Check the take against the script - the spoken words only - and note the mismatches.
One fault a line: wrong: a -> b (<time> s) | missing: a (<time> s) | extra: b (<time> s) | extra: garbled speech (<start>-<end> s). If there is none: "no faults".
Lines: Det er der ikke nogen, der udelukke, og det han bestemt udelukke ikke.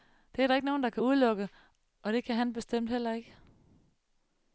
extra: kan (0.9 s)
extra: kan (2.2 s)
wrong: udelukke -> heller (2.9 s)